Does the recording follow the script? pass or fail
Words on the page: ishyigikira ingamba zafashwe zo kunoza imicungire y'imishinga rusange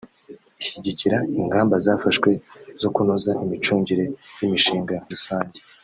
pass